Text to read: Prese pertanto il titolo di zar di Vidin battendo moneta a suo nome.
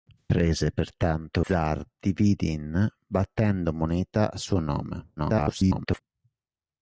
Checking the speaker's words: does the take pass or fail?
fail